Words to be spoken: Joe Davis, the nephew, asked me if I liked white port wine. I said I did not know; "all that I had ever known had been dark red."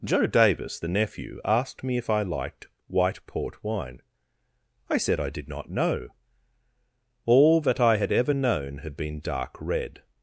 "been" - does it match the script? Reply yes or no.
yes